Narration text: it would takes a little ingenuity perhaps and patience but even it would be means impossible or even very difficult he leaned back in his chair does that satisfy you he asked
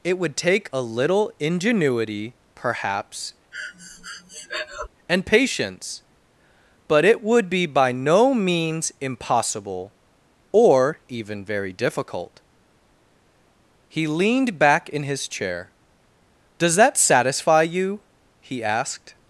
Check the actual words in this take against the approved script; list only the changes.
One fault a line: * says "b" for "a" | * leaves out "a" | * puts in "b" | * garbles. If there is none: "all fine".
* says "take" for "takes"
* leaves out "even"
* puts in "by no"